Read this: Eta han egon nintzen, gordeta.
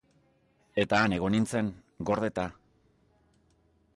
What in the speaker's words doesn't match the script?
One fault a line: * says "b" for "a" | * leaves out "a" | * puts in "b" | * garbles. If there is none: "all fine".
all fine